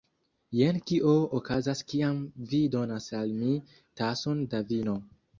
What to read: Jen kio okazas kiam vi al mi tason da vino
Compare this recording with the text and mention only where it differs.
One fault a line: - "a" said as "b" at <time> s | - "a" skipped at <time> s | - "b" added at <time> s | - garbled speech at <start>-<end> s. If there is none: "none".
- "donas" added at 2.8 s